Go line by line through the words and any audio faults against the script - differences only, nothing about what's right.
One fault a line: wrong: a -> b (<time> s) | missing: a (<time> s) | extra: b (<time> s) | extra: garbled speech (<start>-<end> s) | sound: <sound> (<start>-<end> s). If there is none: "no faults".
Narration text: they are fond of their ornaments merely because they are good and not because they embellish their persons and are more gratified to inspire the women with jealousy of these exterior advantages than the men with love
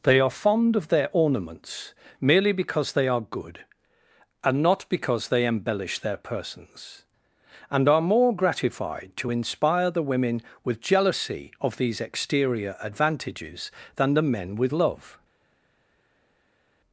no faults